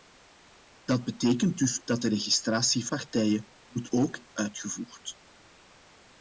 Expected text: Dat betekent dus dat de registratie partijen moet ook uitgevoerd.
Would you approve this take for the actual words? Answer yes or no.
yes